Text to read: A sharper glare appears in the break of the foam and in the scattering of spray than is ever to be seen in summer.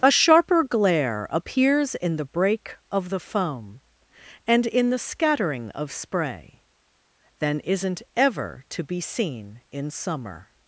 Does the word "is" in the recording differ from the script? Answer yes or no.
yes